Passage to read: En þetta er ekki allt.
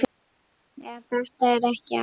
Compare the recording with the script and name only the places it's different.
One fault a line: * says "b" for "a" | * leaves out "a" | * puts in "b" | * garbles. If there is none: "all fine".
all fine